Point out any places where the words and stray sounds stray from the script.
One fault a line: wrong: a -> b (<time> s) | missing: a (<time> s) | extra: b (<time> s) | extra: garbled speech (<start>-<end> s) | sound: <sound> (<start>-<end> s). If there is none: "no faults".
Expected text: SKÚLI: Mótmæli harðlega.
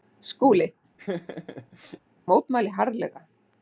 sound: laugh (1.0-2.0 s)